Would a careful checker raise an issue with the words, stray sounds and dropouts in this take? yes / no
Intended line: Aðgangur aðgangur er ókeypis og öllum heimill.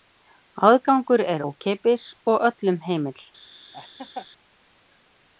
yes